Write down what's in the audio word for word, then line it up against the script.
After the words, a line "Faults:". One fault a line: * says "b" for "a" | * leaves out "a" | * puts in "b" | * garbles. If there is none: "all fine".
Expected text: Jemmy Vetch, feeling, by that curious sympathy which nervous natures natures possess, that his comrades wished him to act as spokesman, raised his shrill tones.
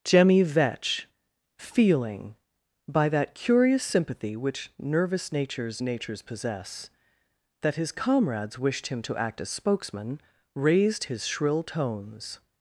Jemmy Vetch, feeling, by that curious sympathy which nervous natures natures possess, that his comrades wished him to act as spokesman, raised his shrill tones.
Faults:
all fine